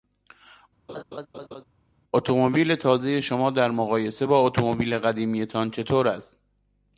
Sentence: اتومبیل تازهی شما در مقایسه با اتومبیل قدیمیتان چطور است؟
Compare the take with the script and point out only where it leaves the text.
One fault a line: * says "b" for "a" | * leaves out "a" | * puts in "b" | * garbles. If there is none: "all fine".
all fine